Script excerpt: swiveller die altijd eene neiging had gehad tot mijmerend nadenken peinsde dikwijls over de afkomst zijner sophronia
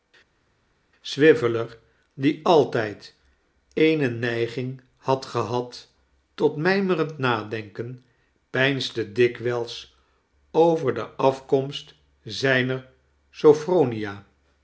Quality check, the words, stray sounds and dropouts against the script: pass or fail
pass